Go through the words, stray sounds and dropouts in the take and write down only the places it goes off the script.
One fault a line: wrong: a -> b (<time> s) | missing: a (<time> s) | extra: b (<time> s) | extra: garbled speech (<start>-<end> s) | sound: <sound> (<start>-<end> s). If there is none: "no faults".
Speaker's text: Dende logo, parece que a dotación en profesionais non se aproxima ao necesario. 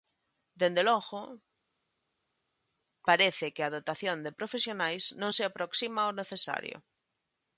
wrong: en -> de (4.3 s)